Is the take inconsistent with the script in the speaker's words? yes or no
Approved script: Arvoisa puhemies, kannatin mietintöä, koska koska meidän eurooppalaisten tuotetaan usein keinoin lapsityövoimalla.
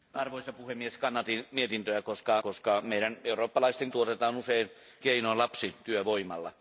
no